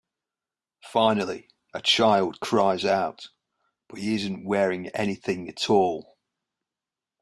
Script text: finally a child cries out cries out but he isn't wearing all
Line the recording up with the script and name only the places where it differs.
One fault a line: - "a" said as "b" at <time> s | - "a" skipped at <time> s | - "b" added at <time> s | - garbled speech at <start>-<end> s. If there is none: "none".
- "cries out" skipped at 3.3 s
- "anything at" added at 5.0 s